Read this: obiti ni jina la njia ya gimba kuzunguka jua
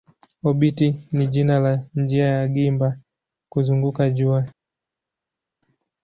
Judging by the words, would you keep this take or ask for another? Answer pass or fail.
pass